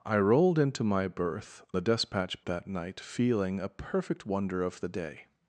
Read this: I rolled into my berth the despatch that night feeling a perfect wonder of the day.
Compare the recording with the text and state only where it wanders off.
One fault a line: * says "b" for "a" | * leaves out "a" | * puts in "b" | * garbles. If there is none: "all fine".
all fine